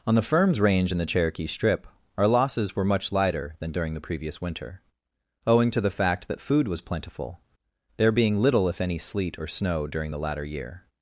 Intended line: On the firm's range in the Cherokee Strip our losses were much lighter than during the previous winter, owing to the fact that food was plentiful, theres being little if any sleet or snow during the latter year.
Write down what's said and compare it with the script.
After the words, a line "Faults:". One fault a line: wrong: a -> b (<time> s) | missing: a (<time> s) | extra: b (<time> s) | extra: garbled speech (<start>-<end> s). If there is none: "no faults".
On the firm's range in the Cherokee Strip our losses were much lighter than during the previous winter, owing to the fact that food was plentiful, there being little if any sleet or snow during the latter year.
Faults:
wrong: theres -> there (8.0 s)